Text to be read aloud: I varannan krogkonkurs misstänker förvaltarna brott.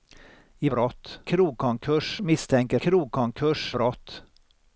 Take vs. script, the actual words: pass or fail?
fail